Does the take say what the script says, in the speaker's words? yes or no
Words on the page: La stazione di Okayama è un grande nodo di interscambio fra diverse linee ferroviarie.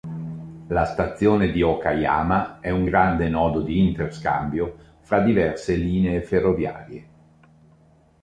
yes